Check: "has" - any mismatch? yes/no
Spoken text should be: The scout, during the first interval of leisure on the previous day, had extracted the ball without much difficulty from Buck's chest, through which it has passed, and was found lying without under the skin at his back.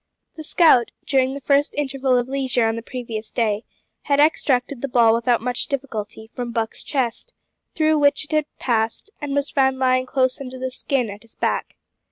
yes